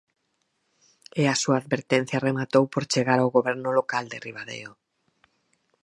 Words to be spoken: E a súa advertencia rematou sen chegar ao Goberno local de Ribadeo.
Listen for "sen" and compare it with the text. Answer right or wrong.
wrong